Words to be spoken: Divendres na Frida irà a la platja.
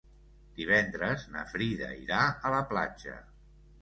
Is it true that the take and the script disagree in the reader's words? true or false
false